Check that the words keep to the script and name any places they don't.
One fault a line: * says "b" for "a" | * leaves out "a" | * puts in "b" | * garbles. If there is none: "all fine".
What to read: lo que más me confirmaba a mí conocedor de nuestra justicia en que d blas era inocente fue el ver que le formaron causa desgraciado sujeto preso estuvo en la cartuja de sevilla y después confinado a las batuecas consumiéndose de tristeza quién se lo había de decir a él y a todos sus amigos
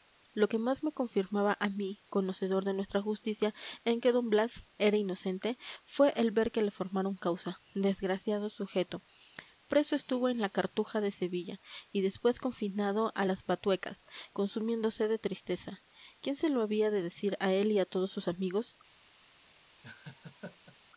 all fine